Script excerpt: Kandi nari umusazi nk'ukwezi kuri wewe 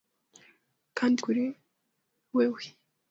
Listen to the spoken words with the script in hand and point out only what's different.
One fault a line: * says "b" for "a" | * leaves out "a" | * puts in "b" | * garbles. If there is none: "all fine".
* leaves out "nari umusazi nk'ukwezi"